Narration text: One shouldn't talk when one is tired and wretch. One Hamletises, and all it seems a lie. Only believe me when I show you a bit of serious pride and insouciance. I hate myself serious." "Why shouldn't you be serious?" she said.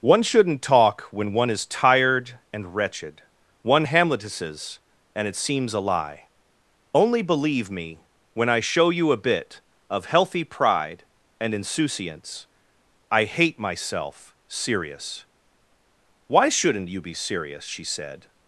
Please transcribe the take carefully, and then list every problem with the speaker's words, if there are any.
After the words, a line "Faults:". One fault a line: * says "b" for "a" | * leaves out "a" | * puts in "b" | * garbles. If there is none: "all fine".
One shouldn't talk when one is tired and wretched. One Hamletises, and it seems a lie. Only believe me when I show you a bit of healthy pride and insouciance. I hate myself serious." "Why shouldn't you be serious?" she said.
Faults:
* says "wretched" for "wretch"
* leaves out "all"
* says "healthy" for "serious"